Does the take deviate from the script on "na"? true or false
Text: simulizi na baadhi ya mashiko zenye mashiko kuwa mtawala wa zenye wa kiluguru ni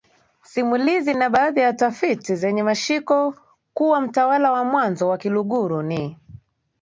false